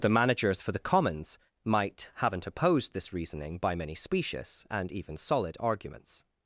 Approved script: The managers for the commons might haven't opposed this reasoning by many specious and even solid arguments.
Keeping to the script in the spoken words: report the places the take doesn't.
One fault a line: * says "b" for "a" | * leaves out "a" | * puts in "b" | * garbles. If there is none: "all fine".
all fine